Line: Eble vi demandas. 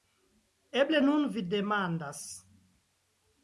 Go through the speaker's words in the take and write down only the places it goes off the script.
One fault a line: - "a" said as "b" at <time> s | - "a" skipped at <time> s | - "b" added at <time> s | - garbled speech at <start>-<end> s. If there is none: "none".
- "nun" added at 1.0 s